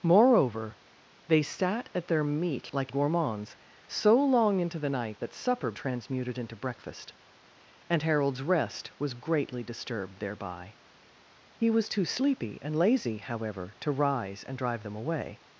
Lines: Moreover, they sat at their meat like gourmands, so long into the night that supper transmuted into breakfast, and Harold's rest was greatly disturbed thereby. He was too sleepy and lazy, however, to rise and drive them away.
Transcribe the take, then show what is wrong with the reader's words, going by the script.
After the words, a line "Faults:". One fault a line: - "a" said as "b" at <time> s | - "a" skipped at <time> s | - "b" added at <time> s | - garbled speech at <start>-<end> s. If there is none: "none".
Moreover, they sat at their meat like gourmands, so long into the night that supper transmuted into breakfast, and Harold's rest was greatly disturbed thereby. He was too sleepy and lazy, however, to rise and drive them away.
Faults:
none